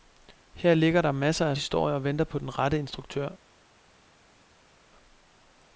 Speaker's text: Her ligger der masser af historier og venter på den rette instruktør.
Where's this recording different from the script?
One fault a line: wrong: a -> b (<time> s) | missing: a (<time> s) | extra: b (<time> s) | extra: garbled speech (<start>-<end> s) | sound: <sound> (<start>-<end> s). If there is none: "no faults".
no faults